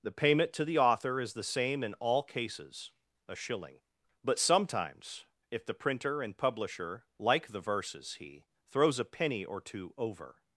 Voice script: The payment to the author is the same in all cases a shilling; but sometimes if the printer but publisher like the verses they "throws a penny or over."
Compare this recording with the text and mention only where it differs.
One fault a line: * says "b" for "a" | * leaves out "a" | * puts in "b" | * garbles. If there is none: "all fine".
* says "and" for "but"
* says "he" for "they"
* puts in "two"